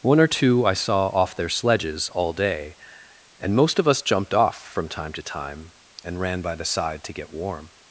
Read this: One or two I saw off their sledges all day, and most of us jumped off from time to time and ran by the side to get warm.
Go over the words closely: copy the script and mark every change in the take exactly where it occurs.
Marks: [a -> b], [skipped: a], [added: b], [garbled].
One or two I saw off their sledges all day, and most of us jumped off from time to time and ran by the side to get warm.